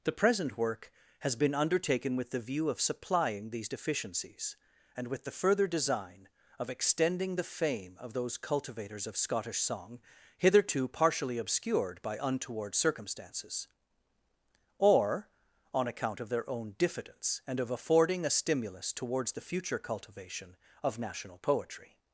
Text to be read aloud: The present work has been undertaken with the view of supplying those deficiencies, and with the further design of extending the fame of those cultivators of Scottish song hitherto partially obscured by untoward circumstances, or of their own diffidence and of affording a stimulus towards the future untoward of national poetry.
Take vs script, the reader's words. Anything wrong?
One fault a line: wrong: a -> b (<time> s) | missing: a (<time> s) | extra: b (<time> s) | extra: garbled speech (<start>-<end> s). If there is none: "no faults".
wrong: those -> these (3.5 s)
extra: on account (15.7 s)
wrong: untoward -> cultivation (19.8 s)